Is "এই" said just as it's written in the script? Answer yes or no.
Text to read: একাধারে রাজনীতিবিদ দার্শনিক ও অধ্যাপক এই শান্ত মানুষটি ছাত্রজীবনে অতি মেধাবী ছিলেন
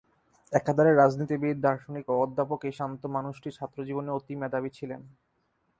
yes